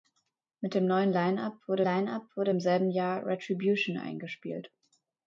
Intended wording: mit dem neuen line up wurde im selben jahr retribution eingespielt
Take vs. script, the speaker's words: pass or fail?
fail